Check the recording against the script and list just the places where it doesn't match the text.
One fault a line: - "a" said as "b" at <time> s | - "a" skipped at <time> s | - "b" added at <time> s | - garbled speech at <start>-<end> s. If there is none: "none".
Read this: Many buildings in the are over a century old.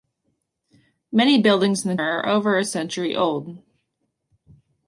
none